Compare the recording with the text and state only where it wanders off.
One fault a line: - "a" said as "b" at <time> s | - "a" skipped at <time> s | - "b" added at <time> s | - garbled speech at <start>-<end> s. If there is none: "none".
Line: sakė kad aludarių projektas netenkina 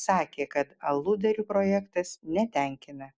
none